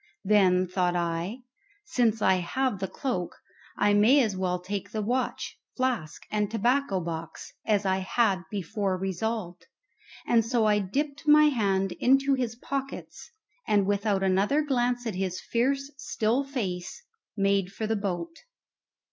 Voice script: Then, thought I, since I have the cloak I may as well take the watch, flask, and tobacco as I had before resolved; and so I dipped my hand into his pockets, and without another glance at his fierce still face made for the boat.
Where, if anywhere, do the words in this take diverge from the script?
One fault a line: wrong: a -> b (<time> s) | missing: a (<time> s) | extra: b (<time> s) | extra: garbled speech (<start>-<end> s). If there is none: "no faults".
extra: box (7.0 s)